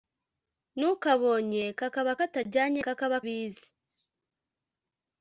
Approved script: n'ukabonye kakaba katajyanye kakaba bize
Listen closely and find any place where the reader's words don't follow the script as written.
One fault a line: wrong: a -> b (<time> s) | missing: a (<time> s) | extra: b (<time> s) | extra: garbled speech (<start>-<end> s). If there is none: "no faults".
no faults